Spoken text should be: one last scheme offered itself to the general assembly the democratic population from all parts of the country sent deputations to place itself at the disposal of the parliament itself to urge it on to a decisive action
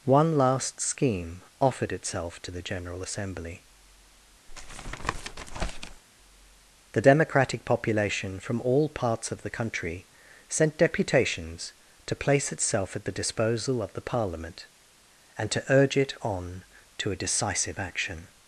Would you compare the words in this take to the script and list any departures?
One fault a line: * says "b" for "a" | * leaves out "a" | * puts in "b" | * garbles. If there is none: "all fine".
* says "and" for "itself"